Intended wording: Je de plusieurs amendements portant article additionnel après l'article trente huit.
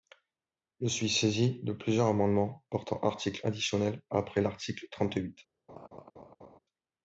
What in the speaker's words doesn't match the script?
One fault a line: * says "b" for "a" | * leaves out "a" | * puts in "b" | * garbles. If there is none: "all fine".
* puts in "suis saisi"